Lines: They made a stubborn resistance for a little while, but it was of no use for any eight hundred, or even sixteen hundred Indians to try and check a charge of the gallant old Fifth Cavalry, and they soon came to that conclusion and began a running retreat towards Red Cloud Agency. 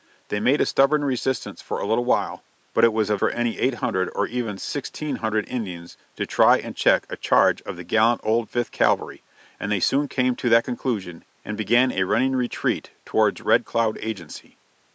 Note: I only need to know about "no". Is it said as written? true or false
false